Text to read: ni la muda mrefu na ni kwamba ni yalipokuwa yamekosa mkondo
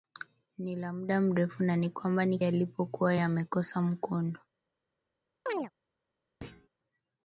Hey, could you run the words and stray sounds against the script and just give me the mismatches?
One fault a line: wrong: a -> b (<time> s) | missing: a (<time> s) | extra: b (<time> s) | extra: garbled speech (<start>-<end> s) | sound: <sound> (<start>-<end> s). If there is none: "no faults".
sound: chirp (5.5-5.7 s)
sound: thud (6.4-6.7 s)